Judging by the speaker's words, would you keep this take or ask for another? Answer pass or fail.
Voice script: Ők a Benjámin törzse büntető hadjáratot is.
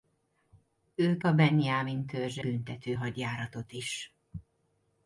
pass